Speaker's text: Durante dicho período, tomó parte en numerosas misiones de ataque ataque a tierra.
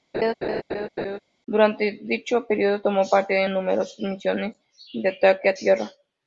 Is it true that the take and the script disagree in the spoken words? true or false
true